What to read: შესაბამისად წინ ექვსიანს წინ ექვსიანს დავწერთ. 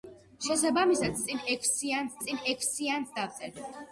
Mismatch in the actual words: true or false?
false